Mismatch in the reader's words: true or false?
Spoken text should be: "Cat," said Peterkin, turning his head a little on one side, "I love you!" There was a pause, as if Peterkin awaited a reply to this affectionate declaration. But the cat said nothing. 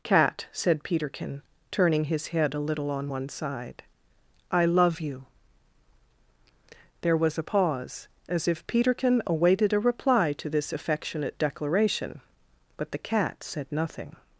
false